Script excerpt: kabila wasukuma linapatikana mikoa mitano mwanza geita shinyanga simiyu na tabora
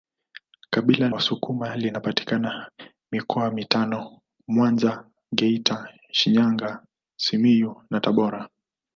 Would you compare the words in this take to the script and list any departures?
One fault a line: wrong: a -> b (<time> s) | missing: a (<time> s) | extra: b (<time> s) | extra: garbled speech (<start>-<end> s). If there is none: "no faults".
no faults